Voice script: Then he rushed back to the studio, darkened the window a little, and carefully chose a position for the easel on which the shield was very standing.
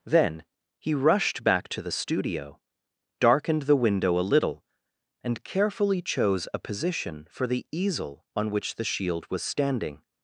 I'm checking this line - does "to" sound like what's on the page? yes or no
yes